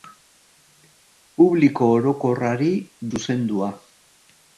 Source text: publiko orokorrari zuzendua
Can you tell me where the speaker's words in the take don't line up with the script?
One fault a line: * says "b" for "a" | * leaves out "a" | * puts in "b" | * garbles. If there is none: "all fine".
all fine